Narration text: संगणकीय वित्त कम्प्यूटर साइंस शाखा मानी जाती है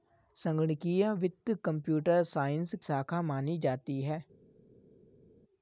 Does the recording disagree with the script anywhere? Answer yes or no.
no